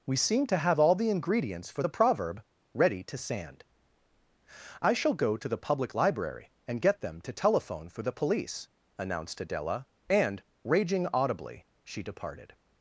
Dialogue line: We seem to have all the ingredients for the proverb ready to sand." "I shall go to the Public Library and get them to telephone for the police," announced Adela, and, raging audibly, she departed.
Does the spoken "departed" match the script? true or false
true